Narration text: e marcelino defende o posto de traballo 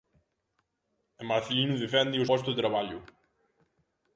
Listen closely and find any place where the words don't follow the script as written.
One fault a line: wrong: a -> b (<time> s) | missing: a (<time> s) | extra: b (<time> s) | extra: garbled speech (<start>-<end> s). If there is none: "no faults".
no faults